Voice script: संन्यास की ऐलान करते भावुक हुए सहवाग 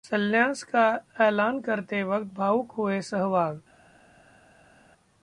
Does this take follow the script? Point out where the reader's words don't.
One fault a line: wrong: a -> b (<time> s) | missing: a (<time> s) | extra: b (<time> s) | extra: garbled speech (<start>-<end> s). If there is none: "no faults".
wrong: की -> का (0.6 s)
extra: वक्त (2.0 s)